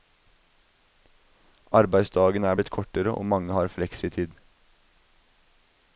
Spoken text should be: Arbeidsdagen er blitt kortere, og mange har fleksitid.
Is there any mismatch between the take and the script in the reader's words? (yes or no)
no